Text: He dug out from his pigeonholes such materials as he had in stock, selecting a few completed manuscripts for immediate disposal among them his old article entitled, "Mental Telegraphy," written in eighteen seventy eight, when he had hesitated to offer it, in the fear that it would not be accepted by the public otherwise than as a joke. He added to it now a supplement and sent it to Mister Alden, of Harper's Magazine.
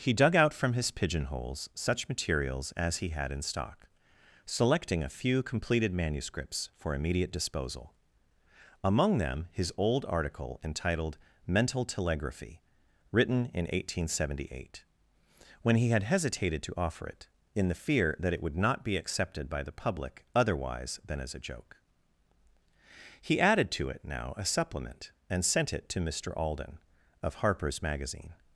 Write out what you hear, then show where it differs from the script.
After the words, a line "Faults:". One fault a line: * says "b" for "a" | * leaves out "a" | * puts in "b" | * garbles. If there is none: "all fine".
He dug out from his pigeonholes such materials as he had in stock, selecting a few completed manuscripts for immediate disposal among them his old article entitled, "Mental Telegraphy," written in eighteen seventy eight, when he had hesitated to offer it, in the fear that it would not be accepted by the public otherwise than as a joke. He added to it now a supplement and sent it to Mister Alden, of Harper's Magazine.
Faults:
all fine